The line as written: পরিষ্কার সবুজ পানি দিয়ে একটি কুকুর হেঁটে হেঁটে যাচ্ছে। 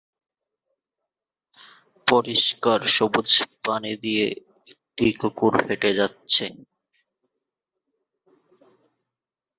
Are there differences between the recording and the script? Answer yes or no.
yes